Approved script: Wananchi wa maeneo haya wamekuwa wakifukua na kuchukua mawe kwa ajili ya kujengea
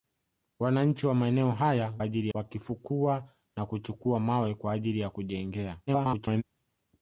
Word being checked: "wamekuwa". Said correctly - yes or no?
no